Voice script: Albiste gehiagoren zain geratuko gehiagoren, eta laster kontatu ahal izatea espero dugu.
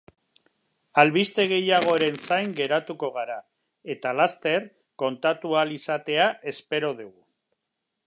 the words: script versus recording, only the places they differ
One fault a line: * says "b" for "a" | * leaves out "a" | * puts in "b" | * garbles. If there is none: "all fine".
* says "gara" for "gehiagoren"